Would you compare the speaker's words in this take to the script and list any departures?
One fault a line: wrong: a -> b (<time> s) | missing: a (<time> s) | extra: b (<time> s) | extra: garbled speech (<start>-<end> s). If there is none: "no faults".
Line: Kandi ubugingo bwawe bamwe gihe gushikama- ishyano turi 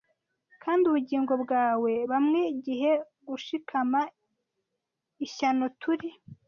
no faults